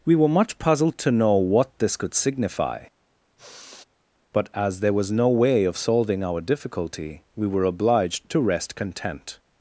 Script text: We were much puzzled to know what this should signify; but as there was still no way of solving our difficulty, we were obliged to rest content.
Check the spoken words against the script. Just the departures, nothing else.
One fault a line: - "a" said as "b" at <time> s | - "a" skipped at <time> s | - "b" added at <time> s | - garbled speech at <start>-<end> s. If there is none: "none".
- "should" said as "could" at 1.9 s
- "still" skipped at 5.1 s